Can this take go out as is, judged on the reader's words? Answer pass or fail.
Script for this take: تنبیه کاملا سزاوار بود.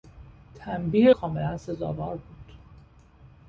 pass